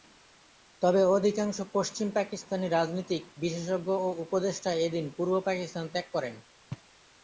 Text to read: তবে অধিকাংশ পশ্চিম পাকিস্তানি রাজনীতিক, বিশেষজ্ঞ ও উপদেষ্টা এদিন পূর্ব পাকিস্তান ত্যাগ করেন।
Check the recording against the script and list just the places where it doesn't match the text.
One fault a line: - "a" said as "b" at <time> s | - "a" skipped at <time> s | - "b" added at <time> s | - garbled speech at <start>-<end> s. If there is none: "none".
none